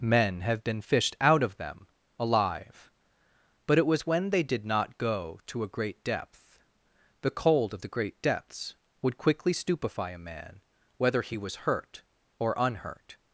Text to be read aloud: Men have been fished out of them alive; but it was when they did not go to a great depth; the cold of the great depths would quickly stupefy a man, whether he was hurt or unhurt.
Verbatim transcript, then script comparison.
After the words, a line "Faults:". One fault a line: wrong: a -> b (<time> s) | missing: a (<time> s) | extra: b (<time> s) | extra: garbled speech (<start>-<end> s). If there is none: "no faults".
Men have been fished out of them alive; but it was when they did not go to a great depth; the cold of the great depths would quickly stupefy a man, whether he was hurt or unhurt.
Faults:
no faults